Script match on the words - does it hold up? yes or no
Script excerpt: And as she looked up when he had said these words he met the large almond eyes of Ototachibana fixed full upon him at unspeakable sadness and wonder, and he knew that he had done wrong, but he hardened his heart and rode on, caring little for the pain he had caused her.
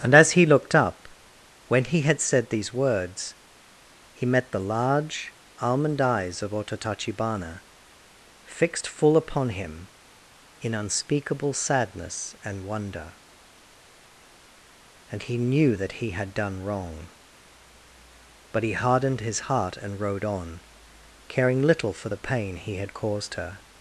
no